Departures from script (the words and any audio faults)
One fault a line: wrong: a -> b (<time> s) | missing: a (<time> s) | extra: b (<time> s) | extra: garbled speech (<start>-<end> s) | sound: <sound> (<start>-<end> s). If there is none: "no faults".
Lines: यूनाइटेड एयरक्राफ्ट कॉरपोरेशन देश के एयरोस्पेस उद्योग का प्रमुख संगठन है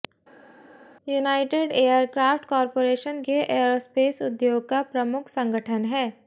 missing: देश (3.2 s)